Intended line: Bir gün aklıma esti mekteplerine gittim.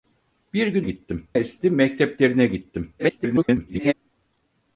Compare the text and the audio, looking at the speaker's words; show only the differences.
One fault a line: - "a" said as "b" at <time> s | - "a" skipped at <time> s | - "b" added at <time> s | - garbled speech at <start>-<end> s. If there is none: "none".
- "aklıma" said as "gittim" at 0.8 s
- garbled speech at 3.0-3.9 s